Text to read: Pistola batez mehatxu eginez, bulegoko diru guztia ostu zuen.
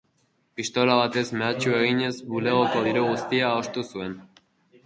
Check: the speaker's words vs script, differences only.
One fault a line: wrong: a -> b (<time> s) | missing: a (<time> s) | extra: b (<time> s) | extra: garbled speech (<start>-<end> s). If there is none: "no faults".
no faults